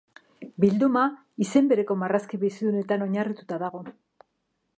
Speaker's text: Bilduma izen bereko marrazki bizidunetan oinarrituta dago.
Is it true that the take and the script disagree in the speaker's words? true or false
false